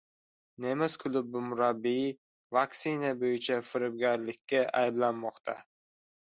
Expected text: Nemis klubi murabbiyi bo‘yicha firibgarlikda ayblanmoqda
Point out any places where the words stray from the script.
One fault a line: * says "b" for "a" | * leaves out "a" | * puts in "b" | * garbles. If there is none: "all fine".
* puts in "vaksina"